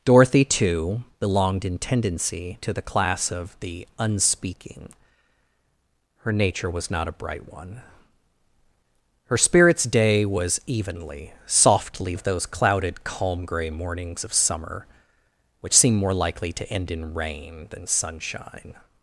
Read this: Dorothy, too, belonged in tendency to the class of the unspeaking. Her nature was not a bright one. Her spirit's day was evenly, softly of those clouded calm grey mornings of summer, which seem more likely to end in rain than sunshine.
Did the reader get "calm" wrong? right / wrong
right